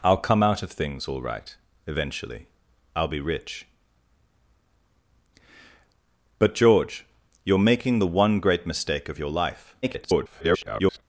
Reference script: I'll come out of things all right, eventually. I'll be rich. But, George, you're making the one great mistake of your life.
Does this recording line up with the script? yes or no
no